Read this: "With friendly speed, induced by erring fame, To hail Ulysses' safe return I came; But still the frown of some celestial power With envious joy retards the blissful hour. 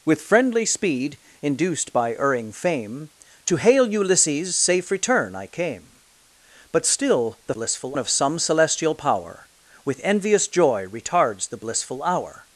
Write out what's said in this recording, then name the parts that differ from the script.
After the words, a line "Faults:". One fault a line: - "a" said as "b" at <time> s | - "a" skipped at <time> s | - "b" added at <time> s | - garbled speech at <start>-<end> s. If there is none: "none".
"With friendly speed, induced by erring fame, To hail Ulysses' safe return I came; But still the blissful of some celestial power With envious joy retards the blissful hour.
Faults:
- "frown" said as "blissful" at 7.5 s